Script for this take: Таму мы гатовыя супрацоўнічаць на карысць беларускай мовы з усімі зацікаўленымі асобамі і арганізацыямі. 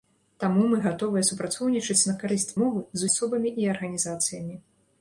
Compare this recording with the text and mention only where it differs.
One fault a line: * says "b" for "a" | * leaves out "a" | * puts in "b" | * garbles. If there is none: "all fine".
* leaves out "беларускай"
* leaves out "усімі зацікаўленымі"